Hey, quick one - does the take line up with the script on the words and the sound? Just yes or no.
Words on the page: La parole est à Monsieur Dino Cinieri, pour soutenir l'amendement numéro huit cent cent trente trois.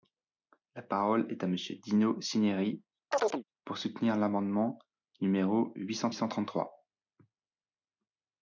no